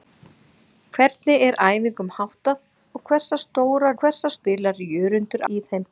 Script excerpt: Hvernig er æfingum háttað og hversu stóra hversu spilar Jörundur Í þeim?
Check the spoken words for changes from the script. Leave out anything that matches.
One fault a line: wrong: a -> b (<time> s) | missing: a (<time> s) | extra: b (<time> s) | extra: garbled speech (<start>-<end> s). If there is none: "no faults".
no faults